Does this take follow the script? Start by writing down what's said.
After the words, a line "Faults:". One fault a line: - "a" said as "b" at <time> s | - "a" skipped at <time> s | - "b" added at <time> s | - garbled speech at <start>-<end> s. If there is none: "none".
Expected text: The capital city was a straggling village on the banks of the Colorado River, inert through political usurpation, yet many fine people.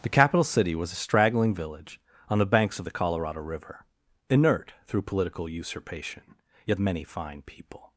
The capital city was a straggling village on the banks of the Colorado River, inert through political usurpation, yet many fine people.
Faults:
none